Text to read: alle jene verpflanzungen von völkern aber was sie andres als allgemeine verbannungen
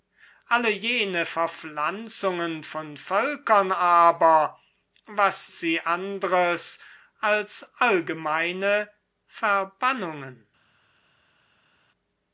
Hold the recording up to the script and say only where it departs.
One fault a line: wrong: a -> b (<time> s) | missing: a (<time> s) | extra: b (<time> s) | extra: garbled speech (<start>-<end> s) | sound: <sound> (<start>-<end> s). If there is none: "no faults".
no faults